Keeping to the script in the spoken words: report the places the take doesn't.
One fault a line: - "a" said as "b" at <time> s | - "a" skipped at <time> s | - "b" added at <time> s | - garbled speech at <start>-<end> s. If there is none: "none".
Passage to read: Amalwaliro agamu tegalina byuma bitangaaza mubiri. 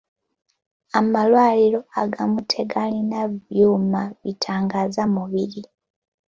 none